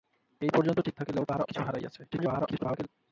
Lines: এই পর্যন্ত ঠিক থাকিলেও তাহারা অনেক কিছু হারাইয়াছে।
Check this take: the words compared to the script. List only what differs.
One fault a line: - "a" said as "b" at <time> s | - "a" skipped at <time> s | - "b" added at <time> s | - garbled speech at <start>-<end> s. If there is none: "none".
- "অনেক" skipped at 1.4 s
- garbled speech at 2.1-2.9 s